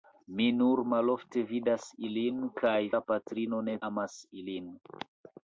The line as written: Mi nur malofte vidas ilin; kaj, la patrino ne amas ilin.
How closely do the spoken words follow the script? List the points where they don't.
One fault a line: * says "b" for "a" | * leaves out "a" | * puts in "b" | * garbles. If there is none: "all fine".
all fine